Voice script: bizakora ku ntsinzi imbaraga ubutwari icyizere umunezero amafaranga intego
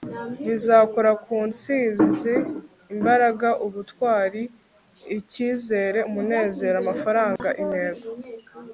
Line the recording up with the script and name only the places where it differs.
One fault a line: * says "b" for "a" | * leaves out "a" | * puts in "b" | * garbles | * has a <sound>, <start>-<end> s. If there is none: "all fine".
* has a dropout, 7.4-7.4 s